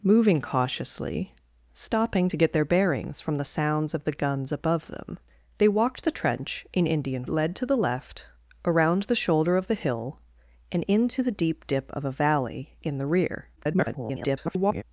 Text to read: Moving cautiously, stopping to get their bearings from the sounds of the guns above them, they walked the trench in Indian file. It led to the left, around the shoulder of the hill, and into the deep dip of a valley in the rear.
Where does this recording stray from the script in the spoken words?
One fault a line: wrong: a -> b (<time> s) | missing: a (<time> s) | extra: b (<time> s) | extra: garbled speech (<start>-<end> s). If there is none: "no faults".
missing: file It (7.3 s)
extra: garbled speech (13.6-14.8 s)